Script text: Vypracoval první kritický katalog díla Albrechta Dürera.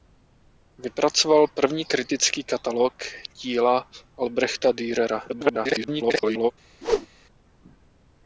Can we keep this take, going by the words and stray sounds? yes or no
no